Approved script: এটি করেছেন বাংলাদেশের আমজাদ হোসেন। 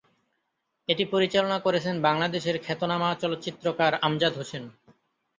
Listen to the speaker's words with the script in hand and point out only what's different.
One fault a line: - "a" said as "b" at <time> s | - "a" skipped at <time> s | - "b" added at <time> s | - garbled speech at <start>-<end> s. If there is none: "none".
- "পরিচালনা" added at 1.1 s
- "খ্যাতনামা চলচ্চিত্রকার" added at 2.6 s